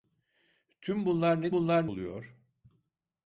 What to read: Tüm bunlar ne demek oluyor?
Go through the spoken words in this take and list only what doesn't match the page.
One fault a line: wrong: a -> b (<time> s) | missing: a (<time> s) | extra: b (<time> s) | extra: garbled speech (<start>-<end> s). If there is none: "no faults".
wrong: demek -> bunlar (1.5 s)